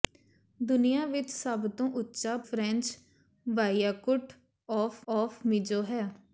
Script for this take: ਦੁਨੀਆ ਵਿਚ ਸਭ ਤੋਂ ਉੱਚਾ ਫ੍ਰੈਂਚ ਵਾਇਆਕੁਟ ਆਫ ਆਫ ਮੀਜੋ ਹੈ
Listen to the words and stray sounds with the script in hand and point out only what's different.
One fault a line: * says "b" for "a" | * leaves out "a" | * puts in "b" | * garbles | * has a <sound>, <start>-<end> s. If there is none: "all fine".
all fine